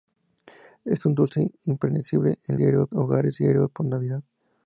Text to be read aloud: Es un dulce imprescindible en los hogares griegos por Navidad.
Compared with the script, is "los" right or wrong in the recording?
wrong